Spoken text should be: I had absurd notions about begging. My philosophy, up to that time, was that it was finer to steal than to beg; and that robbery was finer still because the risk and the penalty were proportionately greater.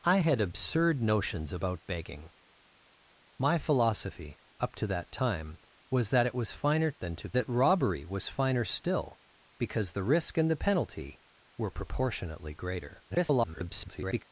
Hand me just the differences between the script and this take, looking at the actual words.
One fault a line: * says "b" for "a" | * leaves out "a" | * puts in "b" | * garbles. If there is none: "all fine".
* leaves out "to steal"
* leaves out "beg and"
* garbles